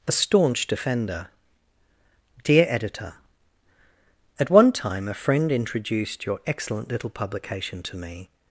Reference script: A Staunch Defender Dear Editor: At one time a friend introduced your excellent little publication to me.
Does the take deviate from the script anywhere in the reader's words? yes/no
no